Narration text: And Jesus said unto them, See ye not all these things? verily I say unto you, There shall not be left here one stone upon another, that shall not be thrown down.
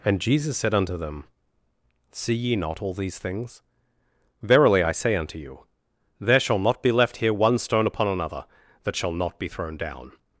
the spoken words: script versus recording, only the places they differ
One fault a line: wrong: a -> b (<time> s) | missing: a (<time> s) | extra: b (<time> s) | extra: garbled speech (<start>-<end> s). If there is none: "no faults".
no faults